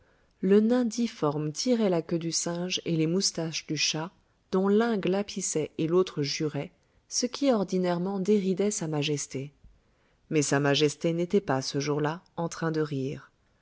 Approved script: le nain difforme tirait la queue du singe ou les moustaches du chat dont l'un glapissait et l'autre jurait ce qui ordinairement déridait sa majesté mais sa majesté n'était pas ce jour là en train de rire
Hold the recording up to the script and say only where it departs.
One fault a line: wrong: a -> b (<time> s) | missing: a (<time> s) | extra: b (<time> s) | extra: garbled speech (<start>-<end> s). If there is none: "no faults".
wrong: ou -> et (2.9 s)